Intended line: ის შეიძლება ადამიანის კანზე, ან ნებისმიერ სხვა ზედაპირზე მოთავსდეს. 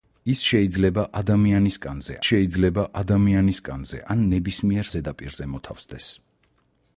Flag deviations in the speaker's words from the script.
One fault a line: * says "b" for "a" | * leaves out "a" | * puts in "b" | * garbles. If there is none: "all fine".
* puts in "შეიძლება ადამიანის კანზე"
* leaves out "სხვა"